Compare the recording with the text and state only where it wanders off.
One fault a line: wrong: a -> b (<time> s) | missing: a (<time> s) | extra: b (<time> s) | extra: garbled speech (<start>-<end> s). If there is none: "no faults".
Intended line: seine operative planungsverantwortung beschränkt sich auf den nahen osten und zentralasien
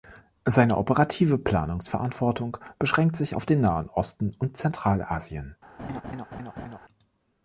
no faults